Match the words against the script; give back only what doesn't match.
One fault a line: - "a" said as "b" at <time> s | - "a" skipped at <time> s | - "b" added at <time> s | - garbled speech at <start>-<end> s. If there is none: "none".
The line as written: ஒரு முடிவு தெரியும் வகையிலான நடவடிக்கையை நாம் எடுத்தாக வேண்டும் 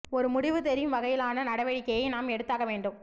none